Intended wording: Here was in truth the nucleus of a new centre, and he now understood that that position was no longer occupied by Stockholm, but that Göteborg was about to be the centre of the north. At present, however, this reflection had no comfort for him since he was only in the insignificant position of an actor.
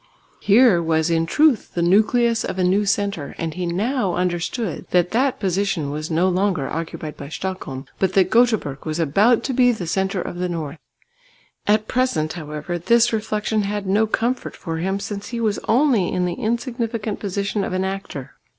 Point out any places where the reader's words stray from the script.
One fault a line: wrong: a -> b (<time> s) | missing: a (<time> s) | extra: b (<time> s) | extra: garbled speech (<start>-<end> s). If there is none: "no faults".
no faults